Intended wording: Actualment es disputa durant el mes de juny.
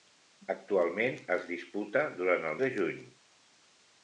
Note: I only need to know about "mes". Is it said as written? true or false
false